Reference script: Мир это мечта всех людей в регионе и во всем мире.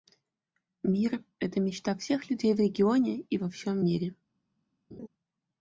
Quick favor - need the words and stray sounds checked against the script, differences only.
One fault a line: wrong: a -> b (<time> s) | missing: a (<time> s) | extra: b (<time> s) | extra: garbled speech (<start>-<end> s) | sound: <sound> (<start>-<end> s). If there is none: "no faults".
sound: laugh (4.9-5.1 s)